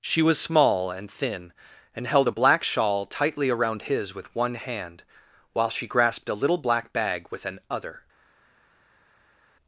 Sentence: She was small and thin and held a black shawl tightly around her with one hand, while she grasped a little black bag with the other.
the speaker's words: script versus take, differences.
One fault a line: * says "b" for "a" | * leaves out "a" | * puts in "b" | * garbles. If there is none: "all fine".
* says "his" for "her"
* says "an" for "the"